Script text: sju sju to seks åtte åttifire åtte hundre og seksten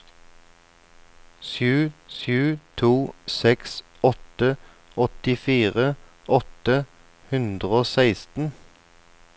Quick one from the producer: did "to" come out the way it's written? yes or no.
yes